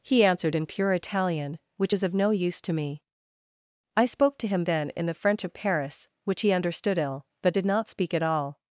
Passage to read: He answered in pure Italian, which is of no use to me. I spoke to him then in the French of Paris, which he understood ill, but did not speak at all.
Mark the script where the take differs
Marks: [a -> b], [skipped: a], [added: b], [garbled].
He answered in pure Italian, which is of no use to me. I spoke to him then in the French of Paris, which he understood ill, but did not speak at all.